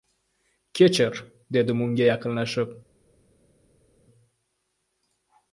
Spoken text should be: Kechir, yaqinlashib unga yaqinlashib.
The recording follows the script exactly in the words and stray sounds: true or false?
false